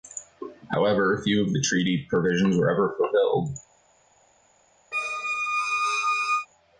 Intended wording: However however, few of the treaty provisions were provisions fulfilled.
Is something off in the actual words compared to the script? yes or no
yes